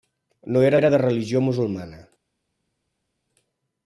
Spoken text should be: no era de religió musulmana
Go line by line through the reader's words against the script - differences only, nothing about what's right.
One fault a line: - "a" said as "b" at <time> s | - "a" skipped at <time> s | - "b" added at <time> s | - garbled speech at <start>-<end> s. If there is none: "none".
- "era" added at 0.7 s